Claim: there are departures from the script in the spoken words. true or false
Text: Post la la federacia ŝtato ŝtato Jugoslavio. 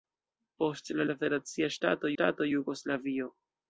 false